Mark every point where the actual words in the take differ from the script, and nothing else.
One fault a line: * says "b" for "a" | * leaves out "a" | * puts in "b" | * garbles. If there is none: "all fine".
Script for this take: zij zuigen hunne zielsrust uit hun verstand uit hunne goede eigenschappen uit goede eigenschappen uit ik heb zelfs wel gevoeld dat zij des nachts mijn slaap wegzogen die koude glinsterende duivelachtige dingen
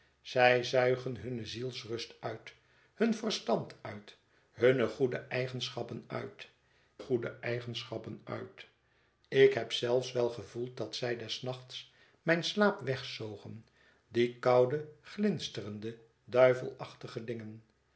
all fine